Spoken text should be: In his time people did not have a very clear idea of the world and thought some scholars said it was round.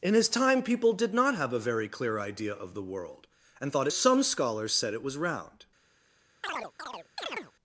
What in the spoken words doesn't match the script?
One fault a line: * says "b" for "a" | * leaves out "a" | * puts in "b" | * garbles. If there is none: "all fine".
all fine